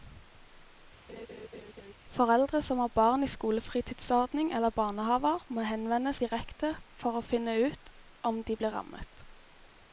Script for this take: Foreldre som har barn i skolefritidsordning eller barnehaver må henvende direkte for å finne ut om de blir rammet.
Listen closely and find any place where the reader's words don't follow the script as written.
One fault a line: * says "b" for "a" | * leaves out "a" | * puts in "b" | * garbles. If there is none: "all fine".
all fine